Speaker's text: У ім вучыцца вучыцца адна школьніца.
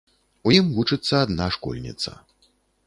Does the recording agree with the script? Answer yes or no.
no